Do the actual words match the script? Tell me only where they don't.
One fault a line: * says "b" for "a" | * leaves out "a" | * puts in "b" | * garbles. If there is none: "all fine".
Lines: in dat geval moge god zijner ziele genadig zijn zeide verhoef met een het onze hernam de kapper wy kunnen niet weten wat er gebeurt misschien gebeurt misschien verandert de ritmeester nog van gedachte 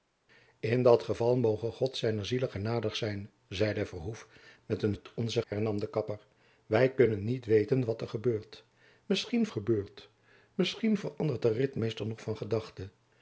all fine